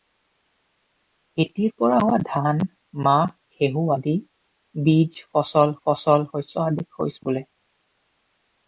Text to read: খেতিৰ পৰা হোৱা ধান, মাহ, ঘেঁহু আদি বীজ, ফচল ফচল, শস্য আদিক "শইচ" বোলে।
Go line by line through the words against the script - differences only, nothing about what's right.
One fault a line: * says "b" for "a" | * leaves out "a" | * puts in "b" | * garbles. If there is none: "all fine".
all fine